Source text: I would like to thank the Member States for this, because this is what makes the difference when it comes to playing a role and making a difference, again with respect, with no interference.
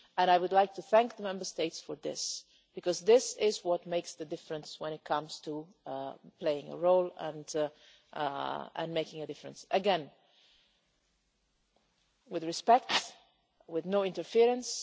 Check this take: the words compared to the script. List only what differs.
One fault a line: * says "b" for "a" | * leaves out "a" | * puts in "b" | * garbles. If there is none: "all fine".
all fine